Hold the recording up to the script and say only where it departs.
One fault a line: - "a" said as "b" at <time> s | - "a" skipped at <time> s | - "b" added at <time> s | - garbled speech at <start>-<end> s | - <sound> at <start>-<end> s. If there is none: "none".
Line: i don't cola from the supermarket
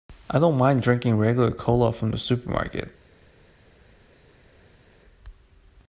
- "mind drinking regular" added at 0.6 s